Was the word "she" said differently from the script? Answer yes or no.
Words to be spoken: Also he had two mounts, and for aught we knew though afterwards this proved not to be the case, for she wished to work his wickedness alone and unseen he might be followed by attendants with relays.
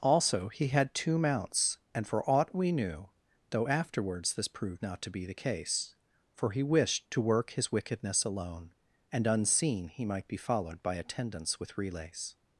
yes